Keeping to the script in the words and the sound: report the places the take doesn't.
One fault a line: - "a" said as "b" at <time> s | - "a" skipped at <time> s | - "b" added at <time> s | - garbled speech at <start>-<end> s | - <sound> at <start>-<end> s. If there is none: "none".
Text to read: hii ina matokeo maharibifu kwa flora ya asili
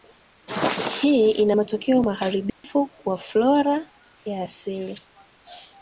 - dropout at 2.5-2.6 s